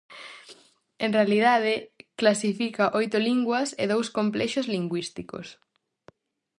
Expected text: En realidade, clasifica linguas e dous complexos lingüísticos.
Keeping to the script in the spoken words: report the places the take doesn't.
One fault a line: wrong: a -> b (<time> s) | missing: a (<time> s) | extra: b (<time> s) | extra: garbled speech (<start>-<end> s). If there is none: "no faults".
extra: oito (3.0 s)